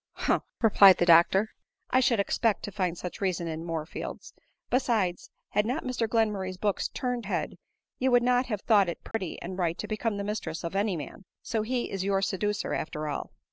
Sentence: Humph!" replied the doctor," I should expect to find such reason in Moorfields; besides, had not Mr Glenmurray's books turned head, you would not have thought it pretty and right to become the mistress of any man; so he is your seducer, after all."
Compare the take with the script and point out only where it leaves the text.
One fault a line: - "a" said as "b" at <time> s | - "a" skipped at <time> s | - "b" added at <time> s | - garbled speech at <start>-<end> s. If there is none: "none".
none